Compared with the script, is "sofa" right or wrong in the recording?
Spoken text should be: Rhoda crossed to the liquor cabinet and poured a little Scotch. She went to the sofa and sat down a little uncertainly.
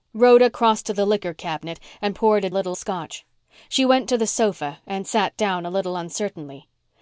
right